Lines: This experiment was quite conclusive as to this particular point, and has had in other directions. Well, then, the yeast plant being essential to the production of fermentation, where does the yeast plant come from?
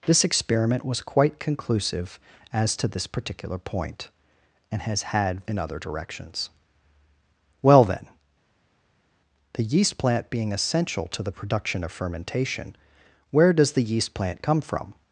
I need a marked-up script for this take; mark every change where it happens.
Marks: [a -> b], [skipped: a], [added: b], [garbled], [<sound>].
This experiment was quite conclusive as to this particular point, and has had in other directions. Well, then, the yeast plant being essential to the production of fermentation, where does the yeast plant come from?